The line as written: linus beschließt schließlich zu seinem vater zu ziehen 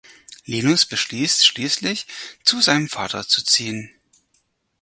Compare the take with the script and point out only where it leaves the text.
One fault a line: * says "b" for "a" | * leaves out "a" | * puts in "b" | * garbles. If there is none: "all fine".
all fine